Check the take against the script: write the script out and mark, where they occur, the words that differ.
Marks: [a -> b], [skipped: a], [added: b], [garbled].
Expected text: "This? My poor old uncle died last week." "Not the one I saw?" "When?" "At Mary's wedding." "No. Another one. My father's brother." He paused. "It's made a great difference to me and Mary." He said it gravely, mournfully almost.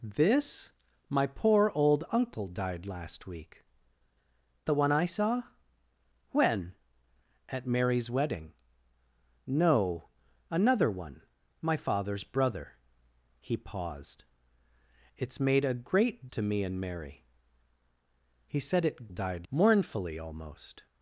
"This? My poor old uncle died last week." [skipped: "Not] the one I saw?" "When?" "At Mary's wedding." "No. Another one. My father's brother." He paused. "It's made a great [skipped: difference] to me and Mary." He said it [gravely, -> died] mournfully almost.